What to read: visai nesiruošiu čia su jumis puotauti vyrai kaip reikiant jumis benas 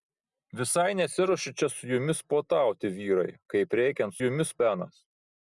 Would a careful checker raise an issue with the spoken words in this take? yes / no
no